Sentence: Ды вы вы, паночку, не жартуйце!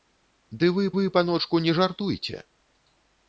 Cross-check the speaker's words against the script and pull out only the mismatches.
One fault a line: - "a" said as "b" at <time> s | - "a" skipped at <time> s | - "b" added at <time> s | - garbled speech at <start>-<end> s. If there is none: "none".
none